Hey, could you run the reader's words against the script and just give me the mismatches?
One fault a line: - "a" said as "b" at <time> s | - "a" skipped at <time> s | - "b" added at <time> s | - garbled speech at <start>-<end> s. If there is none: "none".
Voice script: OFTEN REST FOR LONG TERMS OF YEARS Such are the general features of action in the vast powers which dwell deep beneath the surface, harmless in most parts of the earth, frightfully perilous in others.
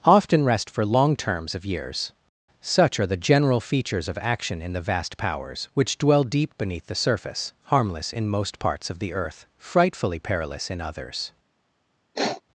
none